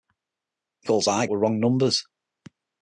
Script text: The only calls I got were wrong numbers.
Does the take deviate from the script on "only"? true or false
true